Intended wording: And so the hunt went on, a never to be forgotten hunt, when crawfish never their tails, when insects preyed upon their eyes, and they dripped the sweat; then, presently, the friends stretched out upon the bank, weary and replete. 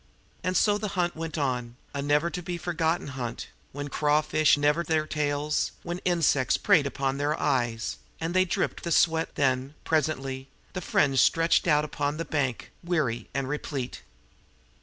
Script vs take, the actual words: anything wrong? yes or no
no